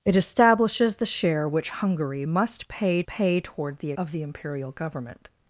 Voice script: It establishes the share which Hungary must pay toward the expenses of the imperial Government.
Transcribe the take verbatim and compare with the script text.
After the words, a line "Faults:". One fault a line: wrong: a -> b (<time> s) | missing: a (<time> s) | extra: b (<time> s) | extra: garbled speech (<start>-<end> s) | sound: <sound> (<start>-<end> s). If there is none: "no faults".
It establishes the share which Hungary must pay pay toward the of the imperial Government.
Faults:
extra: pay (3.1 s)
missing: expenses (3.9 s)